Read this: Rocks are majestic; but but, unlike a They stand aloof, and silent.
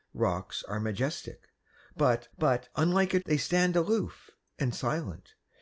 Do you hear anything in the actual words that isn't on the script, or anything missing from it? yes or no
no